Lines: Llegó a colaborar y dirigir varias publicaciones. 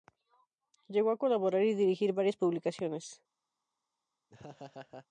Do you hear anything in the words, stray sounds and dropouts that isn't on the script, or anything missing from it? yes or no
yes